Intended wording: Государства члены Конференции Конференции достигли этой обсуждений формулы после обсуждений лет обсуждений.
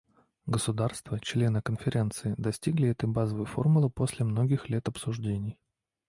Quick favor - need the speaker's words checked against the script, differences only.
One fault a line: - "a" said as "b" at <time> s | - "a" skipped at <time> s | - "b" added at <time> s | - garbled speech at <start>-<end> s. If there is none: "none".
- "Конференции" skipped at 2.3 s
- "обсуждений" said as "базовой" at 3.1 s
- "обсуждений" said as "многих" at 4.2 s